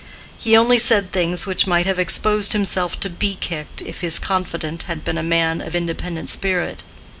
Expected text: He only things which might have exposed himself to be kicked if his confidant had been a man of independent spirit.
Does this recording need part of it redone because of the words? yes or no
yes